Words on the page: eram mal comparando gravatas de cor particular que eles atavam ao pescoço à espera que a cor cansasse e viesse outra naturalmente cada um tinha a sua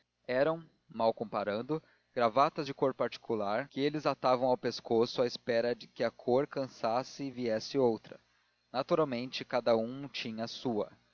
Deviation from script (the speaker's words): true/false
false